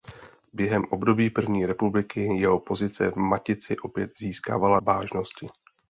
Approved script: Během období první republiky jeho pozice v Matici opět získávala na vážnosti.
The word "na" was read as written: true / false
false